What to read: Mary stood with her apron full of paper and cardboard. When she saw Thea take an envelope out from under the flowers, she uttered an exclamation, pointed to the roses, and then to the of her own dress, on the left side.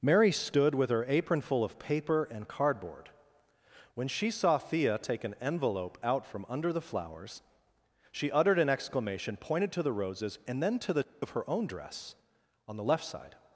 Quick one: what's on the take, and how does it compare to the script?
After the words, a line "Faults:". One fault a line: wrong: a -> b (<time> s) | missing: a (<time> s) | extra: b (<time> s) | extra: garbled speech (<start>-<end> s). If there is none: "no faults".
Mary stood with her apron full of paper and cardboard. When she saw Thea take an envelope out from under the flowers, she uttered an exclamation, pointed to the roses, and then to the of her own dress, on the left side.
Faults:
no faults